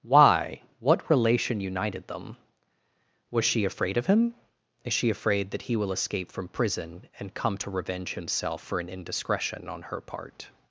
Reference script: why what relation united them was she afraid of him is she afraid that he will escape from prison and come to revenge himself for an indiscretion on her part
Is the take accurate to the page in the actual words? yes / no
yes